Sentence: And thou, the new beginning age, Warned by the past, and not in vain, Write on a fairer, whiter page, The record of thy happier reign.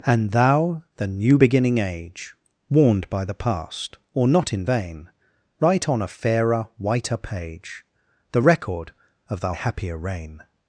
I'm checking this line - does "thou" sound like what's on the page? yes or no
yes